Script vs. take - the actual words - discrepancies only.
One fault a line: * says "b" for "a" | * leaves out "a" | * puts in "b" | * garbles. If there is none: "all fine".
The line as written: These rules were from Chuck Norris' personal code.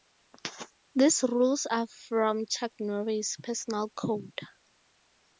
* says "are" for "were"